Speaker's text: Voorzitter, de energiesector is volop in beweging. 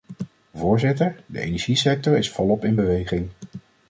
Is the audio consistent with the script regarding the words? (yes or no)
yes